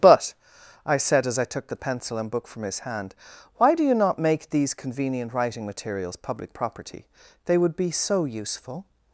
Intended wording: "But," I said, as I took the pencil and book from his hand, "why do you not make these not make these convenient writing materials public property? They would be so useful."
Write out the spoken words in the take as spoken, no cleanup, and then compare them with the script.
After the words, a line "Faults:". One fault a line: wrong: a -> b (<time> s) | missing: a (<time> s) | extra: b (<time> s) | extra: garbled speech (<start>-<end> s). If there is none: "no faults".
"But," I said, as I took the pencil and book from his hand, "why do you not make these convenient writing materials public property? They would be so useful."
Faults:
missing: not make these (4.7 s)